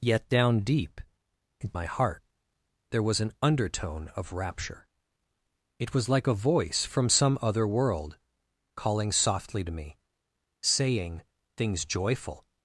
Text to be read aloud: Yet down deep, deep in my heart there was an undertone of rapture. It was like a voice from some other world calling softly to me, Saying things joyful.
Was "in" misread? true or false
true